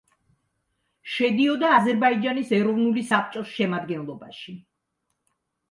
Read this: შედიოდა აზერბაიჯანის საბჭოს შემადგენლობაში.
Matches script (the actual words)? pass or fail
fail